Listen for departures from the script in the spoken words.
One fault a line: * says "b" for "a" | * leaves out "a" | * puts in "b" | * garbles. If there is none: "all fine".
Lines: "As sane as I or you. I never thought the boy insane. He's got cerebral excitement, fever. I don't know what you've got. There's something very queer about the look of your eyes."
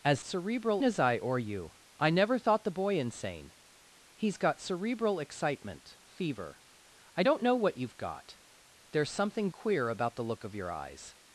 * says "cerebral" for "sane"
* leaves out "very"